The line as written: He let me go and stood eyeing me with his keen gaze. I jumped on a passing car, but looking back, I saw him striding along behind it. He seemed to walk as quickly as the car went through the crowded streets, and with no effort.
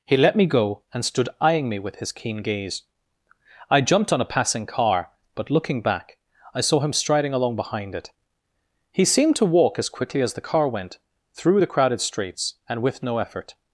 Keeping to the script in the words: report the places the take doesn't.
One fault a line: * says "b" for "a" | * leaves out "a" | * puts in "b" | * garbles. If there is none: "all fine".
all fine